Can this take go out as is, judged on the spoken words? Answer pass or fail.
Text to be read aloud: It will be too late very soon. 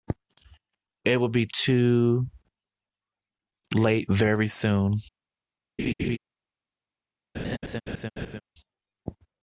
pass